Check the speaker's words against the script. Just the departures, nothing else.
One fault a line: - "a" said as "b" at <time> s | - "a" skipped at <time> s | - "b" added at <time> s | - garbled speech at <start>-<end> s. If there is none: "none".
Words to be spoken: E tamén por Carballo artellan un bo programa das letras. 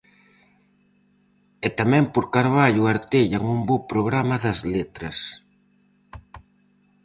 none